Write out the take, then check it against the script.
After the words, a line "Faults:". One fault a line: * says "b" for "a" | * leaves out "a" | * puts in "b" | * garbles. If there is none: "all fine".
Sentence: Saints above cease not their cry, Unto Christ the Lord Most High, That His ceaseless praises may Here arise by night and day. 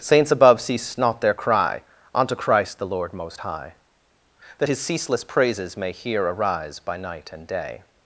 Saints above cease not their cry, Unto Christ the Lord Most High, That His ceaseless praises may Here arise by night and day.
Faults:
all fine